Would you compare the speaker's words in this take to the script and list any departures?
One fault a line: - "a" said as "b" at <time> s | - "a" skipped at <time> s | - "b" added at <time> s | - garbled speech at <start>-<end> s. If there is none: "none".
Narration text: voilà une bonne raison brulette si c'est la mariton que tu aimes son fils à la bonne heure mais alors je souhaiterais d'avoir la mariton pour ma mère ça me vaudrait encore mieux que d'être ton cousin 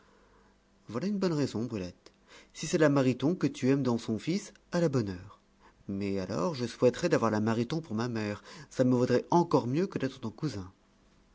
- "dans" added at 3.8 s